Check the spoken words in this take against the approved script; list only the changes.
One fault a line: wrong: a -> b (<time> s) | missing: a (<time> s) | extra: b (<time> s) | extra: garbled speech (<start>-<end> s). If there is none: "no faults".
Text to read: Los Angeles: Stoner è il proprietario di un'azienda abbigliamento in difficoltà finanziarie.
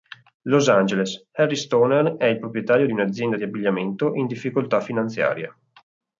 extra: Harry (1.3 s)
extra: di (3.3 s)